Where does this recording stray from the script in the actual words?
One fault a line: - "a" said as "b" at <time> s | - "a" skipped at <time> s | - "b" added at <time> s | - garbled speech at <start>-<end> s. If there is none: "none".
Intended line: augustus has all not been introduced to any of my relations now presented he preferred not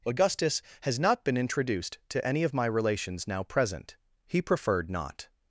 - "all" skipped at 1.0 s
- "presented" said as "present" at 3.4 s